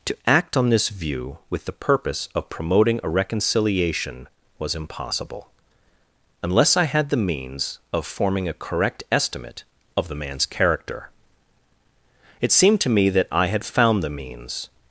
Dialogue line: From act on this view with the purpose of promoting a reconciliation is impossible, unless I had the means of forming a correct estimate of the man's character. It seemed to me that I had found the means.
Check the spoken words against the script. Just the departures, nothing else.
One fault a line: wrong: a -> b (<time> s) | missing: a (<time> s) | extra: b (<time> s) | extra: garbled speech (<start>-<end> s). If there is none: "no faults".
wrong: From -> To (0.1 s)
wrong: is -> was (4.6 s)